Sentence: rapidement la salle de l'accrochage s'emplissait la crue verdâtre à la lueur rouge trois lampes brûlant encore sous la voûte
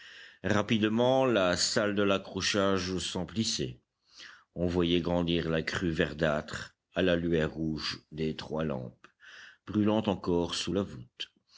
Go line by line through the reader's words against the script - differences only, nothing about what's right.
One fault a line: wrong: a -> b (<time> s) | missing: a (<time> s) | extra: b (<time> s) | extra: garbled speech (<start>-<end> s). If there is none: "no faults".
extra: on voyait grandir (4.5 s)
extra: des (8.1 s)